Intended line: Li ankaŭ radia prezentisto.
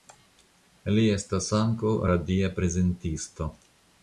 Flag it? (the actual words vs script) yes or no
yes